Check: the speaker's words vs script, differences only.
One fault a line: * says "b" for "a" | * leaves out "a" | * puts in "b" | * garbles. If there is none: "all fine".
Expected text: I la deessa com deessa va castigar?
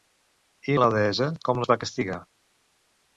* says "les" for "deessa"